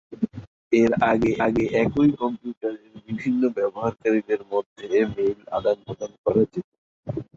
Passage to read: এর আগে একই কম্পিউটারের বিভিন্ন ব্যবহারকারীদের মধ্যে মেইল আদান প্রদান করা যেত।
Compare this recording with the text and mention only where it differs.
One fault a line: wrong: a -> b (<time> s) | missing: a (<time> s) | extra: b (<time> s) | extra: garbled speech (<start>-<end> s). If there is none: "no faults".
extra: আগে (1.4 s)